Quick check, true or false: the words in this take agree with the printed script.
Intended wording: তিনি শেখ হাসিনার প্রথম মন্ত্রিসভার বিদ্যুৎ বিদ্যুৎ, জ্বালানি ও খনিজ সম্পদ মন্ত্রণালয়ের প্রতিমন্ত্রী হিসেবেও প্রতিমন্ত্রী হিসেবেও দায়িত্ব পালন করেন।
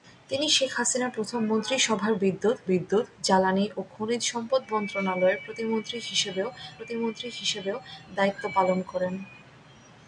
true